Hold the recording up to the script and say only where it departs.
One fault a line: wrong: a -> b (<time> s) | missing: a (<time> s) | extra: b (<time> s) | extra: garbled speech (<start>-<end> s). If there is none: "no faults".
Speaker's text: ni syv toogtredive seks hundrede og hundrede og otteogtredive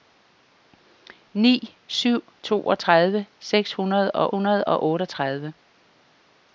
no faults